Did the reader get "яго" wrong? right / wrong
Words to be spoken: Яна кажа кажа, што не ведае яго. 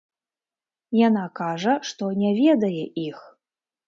wrong